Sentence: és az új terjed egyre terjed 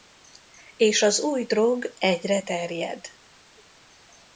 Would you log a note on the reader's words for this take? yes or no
yes